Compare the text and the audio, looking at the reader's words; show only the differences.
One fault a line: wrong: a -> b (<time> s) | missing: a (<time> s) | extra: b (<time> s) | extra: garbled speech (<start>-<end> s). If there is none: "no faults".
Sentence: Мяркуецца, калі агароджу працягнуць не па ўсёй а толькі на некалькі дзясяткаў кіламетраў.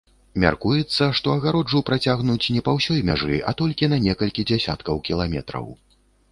wrong: калі -> што (1.2 s)
extra: мяжы (3.1 s)